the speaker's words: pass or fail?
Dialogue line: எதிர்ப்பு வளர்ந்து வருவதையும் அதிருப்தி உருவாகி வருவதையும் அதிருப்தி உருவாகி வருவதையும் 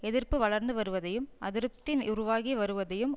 fail